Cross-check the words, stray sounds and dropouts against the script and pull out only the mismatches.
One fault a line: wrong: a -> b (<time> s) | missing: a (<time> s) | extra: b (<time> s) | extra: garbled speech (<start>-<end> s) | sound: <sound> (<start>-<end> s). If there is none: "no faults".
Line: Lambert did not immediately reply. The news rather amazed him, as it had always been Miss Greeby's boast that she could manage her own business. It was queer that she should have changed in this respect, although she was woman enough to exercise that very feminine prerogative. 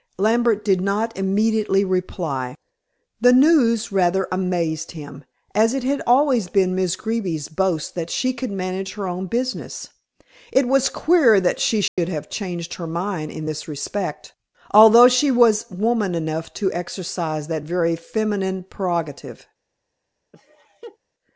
sound: dropout (11.9-12.0 s)
extra: her mind (12.7 s)
sound: laugh (20.3-21.0 s)